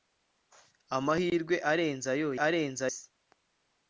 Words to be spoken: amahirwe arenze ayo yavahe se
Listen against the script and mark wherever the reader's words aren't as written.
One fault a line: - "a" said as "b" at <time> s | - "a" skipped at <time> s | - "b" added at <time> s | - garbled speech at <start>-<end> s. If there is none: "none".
- "yavahe" said as "arenze" at 2.5 s